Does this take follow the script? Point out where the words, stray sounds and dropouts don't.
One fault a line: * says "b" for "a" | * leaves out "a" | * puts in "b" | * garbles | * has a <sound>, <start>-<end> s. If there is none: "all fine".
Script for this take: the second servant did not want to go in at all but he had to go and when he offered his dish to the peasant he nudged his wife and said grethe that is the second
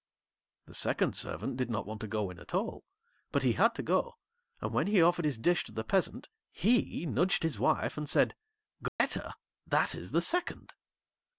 * has a dropout, 8.9-9.0 s